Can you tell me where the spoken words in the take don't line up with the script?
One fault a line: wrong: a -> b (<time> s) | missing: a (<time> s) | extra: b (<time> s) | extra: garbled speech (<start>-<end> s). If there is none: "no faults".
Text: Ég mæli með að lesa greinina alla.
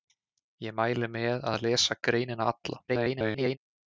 extra: garbled speech (2.9-3.6 s)